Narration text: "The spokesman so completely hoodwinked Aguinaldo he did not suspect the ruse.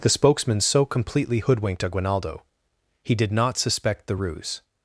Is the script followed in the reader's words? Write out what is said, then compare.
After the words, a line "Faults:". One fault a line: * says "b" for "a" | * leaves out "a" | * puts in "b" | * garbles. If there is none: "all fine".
"The spokesman so completely hoodwinked Aguinaldo he did not suspect the ruse.
Faults:
all fine